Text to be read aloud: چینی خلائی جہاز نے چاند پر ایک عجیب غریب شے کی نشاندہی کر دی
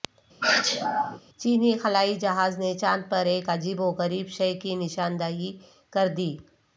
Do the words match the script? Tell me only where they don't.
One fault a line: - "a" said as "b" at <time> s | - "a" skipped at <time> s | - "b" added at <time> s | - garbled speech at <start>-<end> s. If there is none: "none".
- "و" added at 3.8 s